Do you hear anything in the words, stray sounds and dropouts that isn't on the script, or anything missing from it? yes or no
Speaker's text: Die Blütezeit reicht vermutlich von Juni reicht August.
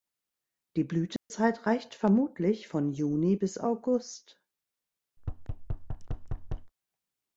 yes